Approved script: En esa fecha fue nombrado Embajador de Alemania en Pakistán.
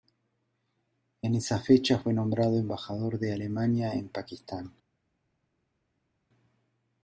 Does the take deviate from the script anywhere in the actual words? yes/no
no